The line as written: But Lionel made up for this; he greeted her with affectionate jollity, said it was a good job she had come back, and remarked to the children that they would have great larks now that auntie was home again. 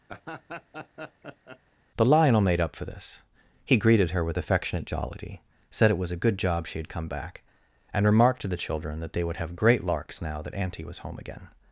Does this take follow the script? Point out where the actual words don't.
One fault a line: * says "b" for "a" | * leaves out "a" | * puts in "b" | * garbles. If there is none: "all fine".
* says "The" for "But"